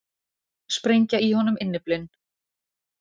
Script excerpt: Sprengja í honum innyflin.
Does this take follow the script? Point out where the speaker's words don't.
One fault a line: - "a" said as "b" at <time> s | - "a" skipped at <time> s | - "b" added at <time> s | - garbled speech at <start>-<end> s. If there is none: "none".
none